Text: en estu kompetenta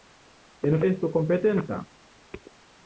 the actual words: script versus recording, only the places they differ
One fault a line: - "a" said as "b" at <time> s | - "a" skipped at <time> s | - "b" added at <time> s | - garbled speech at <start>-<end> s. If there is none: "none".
none